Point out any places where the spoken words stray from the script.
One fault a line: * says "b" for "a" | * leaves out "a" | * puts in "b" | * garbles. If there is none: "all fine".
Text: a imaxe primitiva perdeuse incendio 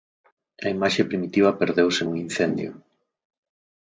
* puts in "nun"